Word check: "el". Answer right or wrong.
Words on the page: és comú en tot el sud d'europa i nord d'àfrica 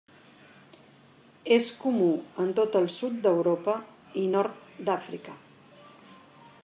right